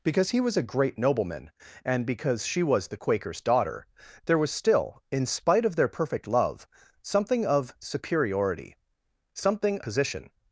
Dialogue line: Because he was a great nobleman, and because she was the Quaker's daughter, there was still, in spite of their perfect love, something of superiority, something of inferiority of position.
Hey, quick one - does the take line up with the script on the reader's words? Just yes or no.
no